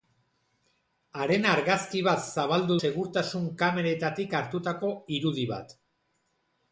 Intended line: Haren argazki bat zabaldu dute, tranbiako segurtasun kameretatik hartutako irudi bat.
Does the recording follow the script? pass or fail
fail